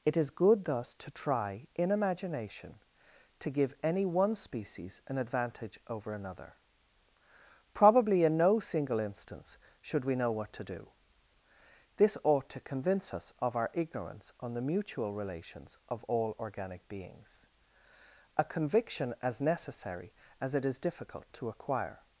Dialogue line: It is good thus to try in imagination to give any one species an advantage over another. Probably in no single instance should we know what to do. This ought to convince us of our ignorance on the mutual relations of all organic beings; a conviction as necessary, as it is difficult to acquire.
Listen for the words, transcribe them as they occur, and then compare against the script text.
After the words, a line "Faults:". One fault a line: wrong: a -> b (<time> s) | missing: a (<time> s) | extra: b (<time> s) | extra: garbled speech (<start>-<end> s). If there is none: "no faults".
It is good thus to try in imagination to give any one species an advantage over another. Probably in no single instance should we know what to do. This ought to convince us of our ignorance on the mutual relations of all organic beings; a conviction as necessary, as it is difficult to acquire.
Faults:
no faults